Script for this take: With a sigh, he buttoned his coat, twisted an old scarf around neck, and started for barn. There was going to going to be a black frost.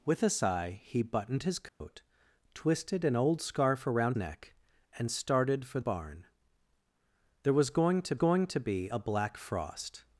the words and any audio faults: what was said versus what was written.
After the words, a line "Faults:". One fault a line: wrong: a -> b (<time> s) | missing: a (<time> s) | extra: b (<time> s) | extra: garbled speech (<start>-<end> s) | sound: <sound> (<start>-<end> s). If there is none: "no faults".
With a sigh, he buttoned his coat, twisted an old scarf around neck, and started for barn. There was going to going to be a black frost.
Faults:
sound: dropout (1.7-1.8 s)